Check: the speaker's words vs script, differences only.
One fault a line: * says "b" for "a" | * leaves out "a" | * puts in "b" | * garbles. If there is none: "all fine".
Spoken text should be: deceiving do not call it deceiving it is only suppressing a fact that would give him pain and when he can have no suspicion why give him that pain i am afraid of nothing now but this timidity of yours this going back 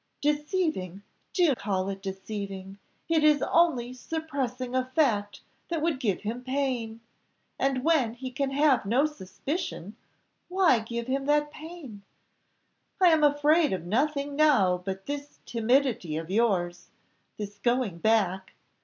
* leaves out "not"